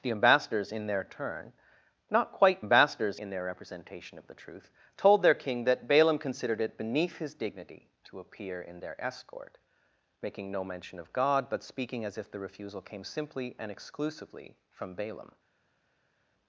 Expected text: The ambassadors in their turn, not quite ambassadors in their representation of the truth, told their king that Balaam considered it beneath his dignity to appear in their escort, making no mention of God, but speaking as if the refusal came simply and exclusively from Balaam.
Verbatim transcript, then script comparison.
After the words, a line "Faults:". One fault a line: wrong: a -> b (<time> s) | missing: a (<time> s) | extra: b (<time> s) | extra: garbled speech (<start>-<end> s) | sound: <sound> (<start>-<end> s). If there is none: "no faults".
The ambassadors in their turn, not quite ambassadors in their representation of the truth, told their king that Balaam considered it beneath his dignity to appear in their escort, making no mention of God, but speaking as if the refusal came simply and exclusively from Balaam.
Faults:
no faults